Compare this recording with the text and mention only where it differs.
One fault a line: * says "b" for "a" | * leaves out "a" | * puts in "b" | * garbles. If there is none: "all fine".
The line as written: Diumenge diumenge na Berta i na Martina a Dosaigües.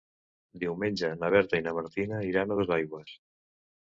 * leaves out "diumenge"
* puts in "iran"